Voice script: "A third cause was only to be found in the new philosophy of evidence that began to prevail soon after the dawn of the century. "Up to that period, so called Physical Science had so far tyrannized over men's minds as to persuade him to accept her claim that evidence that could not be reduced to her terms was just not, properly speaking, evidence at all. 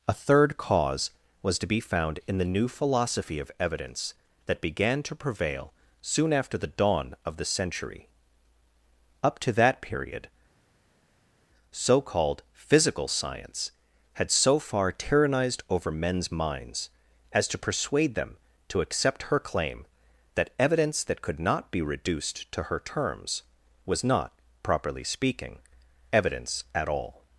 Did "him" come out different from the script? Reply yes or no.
yes